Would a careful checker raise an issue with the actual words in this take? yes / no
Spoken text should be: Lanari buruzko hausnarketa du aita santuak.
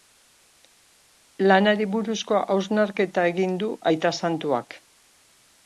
yes